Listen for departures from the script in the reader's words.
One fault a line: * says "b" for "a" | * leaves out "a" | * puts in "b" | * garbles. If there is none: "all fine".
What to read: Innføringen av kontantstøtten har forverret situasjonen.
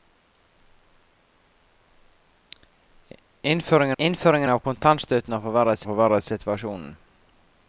* puts in "innføringen"
* puts in "forverret"